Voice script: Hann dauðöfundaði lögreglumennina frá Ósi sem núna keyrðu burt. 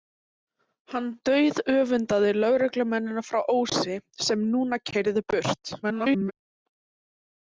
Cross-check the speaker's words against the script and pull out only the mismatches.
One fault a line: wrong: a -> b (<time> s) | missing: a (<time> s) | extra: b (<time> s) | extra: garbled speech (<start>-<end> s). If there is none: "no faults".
extra: garbled speech (5.8-6.3 s)